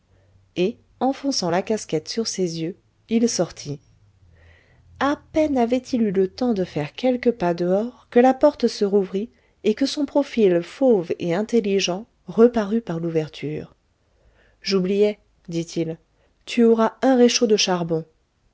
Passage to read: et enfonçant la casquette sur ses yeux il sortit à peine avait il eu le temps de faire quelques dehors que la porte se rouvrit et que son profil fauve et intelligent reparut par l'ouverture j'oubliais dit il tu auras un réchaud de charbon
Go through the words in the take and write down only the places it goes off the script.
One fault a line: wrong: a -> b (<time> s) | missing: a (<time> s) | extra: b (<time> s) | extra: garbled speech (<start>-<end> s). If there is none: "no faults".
extra: pas (7.3 s)